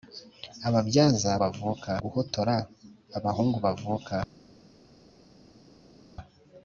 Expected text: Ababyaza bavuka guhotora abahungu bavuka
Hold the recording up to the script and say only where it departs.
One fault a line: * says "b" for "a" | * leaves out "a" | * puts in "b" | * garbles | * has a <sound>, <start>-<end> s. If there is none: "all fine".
all fine